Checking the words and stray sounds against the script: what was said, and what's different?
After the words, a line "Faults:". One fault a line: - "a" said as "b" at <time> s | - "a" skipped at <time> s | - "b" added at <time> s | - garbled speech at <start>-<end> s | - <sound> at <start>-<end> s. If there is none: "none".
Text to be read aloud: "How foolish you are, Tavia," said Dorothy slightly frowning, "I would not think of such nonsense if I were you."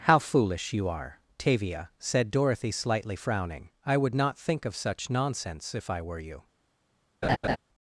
"How foolish you are, Tavia," said Dorothy slightly frowning, "I would not think of such nonsense if I were you."
Faults:
- laugh at 7.2-7.6 s